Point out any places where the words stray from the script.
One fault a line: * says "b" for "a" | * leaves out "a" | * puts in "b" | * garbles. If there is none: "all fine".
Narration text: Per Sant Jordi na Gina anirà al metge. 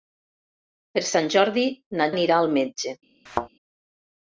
* leaves out "Gina"